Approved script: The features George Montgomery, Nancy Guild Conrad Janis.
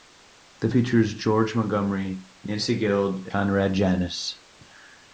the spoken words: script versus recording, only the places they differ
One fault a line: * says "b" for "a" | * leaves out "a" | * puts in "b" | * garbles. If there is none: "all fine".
all fine